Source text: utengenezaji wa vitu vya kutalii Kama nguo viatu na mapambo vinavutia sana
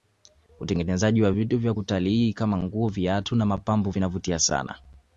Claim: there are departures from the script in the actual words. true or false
false